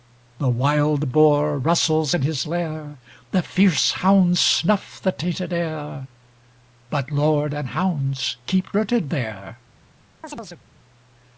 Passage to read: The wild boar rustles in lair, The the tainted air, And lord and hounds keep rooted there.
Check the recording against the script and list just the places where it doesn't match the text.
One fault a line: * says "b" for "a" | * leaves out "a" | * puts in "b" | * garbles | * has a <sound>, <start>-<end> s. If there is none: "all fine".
* puts in "his"
* puts in "fierce hounds snuff"
* says "But" for "And"
* has a chirp, 10.2-10.6 s